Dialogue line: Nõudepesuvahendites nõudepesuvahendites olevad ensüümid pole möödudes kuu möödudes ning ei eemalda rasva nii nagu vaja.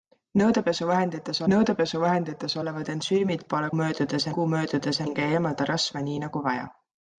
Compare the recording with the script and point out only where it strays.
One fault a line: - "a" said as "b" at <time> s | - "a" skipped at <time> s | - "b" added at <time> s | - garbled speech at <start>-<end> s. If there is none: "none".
none